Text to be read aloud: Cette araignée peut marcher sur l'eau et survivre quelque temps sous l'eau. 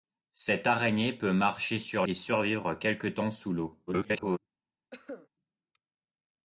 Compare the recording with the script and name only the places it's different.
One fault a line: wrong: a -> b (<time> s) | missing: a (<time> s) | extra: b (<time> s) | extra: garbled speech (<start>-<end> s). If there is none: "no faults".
missing: l'eau (2.1 s)
extra: garbled speech (3.9-4.4 s)